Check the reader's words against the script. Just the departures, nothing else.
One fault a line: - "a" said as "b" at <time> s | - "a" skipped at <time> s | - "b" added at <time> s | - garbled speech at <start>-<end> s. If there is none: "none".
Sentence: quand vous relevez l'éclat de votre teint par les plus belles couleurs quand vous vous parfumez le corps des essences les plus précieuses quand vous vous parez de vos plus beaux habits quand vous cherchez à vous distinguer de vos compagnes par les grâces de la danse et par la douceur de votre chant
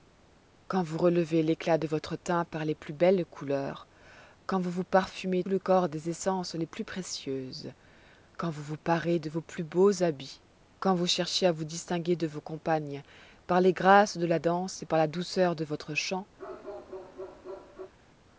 none